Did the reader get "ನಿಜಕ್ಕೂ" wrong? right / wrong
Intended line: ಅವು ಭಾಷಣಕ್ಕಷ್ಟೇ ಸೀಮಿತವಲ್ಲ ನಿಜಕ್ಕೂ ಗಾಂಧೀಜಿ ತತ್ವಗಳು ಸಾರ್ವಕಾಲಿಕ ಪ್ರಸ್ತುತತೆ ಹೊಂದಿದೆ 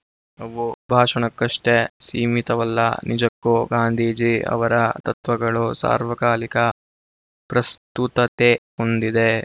right